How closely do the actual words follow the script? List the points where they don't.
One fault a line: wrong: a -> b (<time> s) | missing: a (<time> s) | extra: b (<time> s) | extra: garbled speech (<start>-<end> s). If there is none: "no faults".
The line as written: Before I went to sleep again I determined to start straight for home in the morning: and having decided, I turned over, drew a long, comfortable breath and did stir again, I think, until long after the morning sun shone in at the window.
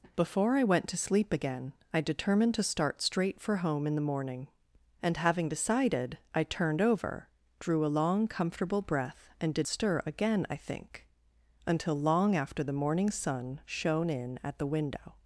no faults